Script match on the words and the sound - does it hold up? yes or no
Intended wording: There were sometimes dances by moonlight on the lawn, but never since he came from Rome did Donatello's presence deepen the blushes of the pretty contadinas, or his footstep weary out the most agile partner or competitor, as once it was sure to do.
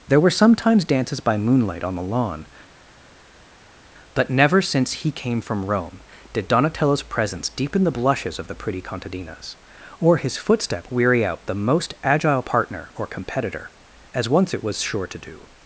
yes